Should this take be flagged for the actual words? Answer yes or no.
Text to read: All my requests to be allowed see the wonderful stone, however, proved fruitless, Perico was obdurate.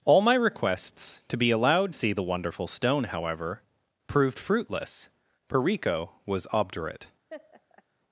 no